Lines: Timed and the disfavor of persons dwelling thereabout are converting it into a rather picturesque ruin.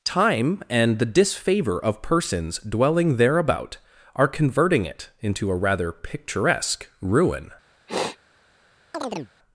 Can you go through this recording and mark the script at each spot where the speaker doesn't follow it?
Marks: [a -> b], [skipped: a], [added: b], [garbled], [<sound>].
[Timed -> Time] and the disfavor of persons dwelling thereabout are converting it into a rather picturesque ruin. [sniff] [chirp]